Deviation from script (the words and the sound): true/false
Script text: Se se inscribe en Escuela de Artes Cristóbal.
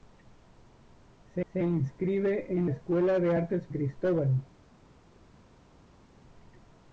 false